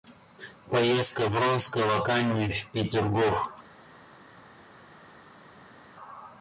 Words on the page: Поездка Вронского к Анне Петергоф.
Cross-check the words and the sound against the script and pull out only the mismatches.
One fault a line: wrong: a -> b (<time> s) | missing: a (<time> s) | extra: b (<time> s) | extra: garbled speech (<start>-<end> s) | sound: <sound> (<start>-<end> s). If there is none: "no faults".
extra: в (2.5 s)